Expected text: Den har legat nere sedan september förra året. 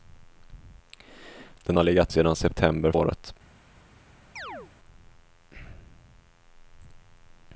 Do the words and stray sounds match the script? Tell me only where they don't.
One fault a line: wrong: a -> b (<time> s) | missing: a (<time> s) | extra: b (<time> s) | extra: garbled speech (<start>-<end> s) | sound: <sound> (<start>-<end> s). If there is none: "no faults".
missing: nere (2.1 s)
missing: förra (2.9 s)
sound: chirp (4.4-4.7 s)